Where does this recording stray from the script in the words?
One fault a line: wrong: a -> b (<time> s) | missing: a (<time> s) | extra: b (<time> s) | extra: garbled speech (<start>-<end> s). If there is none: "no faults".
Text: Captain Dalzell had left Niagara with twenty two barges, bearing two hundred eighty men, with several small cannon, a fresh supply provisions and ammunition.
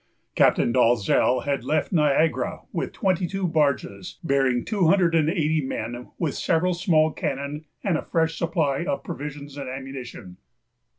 extra: and (5.1 s)
extra: and (7.8 s)
extra: of (8.8 s)